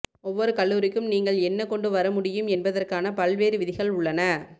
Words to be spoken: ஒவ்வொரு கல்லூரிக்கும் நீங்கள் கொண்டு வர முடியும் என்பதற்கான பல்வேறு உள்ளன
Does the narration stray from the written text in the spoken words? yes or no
yes